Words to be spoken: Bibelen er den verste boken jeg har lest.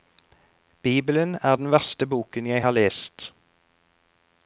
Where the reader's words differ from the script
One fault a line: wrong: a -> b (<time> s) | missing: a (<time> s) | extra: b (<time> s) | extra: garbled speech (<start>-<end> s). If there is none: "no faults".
no faults